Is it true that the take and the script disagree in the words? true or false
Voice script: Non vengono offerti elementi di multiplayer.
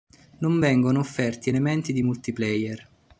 false